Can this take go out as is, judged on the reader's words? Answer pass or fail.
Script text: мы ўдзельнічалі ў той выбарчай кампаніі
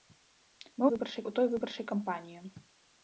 fail